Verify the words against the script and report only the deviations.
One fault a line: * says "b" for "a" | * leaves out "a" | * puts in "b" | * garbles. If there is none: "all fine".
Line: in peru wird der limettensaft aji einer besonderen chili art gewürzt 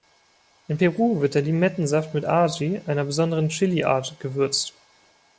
* puts in "mit"